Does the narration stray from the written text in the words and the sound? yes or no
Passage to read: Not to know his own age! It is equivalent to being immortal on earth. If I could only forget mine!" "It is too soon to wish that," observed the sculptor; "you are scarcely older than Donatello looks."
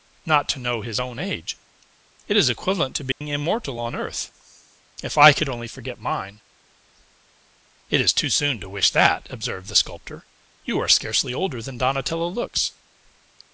yes